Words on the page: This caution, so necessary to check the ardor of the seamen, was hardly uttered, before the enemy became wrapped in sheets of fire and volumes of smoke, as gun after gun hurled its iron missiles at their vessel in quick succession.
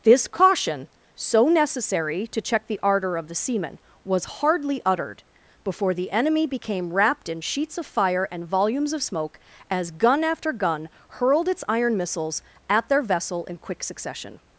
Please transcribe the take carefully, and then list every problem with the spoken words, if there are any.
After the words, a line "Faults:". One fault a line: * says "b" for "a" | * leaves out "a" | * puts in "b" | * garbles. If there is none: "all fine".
This caution, so necessary to check the ardor of the seamen, was hardly uttered, before the enemy became wrapped in sheets of fire and volumes of smoke, as gun after gun hurled its iron missiles at their vessel in quick succession.
Faults:
all fine